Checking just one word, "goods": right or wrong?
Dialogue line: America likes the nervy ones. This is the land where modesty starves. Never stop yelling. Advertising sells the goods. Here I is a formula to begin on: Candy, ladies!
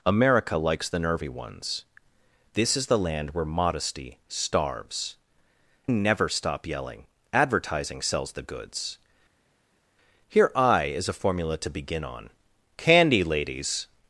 right